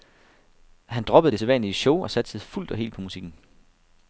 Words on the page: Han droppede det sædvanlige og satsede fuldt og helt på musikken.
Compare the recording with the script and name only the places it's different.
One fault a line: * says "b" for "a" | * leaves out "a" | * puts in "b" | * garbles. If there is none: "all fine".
* puts in "show"